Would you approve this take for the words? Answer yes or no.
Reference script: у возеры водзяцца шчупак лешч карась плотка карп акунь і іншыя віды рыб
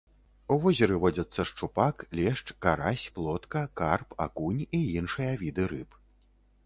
yes